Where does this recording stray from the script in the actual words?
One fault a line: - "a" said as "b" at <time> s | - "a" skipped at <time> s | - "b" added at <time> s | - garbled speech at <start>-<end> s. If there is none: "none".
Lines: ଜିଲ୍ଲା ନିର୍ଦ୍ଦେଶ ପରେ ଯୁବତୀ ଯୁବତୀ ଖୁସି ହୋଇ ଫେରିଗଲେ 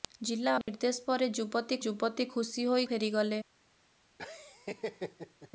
none